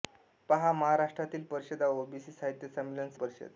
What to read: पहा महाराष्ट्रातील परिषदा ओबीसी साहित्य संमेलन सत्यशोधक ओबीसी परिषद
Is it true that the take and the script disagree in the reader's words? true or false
true